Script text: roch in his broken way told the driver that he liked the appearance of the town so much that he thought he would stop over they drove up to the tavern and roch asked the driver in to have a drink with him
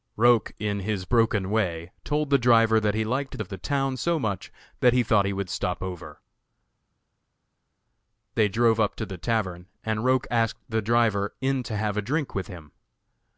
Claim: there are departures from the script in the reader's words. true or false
true